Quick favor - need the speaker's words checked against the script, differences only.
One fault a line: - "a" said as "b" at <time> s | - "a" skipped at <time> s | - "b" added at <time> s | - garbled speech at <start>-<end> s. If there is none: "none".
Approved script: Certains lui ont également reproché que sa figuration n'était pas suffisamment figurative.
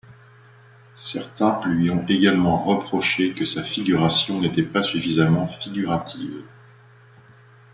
none